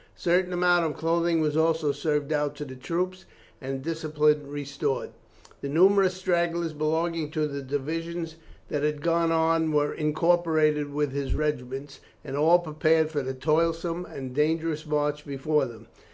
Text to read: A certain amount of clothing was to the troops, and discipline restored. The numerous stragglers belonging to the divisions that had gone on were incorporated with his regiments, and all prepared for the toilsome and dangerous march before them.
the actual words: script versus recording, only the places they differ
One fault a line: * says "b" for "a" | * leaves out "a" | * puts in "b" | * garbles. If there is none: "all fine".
* puts in "also served out"